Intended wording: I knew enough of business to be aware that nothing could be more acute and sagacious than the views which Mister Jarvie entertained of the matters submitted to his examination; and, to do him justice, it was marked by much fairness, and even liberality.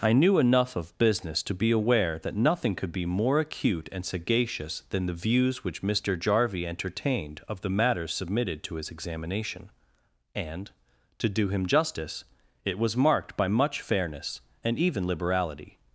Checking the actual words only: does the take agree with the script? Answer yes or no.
yes